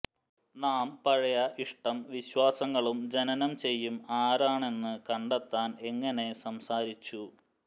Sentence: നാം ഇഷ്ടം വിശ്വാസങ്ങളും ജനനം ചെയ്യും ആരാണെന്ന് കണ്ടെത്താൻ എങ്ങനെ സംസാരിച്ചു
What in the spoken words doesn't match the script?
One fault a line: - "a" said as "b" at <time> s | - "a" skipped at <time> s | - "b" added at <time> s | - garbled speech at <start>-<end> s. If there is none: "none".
- "പഴയ" added at 1.0 s